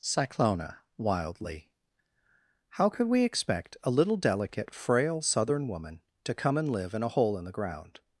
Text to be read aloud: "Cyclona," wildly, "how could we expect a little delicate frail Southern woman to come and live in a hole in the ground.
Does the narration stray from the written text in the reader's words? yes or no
no